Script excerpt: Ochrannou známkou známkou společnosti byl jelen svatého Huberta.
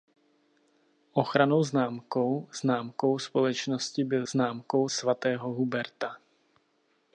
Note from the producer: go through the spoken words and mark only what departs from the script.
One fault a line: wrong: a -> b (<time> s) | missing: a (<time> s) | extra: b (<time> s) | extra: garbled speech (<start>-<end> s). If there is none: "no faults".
wrong: jelen -> známkou (4.3 s)